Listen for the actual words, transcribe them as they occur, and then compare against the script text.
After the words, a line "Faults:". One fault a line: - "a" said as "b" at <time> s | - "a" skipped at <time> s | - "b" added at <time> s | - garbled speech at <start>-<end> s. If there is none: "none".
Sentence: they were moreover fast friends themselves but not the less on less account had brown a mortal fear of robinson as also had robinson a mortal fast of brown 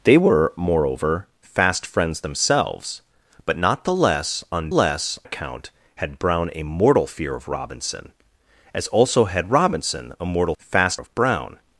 they were moreover fast friends themselves but not the less on less account had brown a mortal fear of robinson as also had robinson a mortal fast of brown
Faults:
none